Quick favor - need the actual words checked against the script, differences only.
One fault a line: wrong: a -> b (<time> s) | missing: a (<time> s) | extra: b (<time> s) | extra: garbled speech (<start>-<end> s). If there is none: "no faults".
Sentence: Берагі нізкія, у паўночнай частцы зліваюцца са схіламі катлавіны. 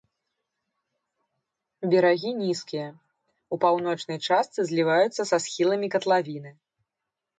no faults